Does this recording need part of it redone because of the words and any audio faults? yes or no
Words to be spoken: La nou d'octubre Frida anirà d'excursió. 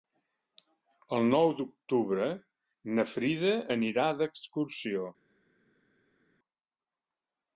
yes